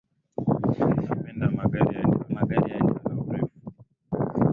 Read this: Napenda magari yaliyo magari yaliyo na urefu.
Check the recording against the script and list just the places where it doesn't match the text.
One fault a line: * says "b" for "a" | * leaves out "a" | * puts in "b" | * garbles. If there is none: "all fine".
all fine